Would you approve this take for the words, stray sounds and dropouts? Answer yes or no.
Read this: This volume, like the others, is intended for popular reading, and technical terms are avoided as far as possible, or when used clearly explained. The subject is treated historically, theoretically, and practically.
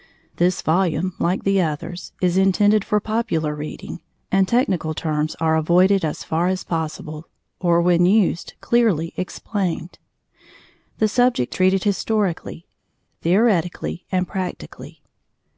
no